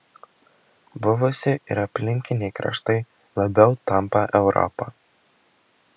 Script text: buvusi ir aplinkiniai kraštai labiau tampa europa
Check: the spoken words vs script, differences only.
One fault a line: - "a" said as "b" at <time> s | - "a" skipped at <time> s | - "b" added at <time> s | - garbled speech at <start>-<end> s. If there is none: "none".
none